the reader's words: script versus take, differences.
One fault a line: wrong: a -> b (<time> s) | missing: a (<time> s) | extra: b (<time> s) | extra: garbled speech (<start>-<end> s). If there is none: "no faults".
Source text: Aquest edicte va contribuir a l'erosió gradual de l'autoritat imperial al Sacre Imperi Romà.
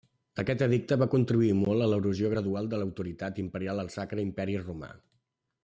extra: molt (1.6 s)